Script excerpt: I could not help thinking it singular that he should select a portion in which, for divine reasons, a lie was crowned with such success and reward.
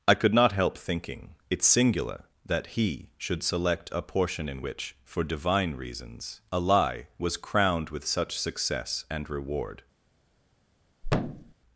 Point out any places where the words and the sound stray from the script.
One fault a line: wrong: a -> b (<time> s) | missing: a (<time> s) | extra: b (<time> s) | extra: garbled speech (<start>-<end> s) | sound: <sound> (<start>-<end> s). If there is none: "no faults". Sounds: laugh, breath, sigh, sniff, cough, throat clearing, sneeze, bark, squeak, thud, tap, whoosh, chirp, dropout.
sound: thud (11.0-11.5 s)